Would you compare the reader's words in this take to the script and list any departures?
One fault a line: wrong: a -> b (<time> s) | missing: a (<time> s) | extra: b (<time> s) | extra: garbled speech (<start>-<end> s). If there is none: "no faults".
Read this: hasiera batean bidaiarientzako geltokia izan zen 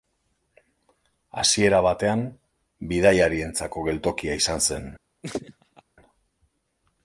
no faults